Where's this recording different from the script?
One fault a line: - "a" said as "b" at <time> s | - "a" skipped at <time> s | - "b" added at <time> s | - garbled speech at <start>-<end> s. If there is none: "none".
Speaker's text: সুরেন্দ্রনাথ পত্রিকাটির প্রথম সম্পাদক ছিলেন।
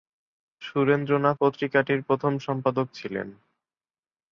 none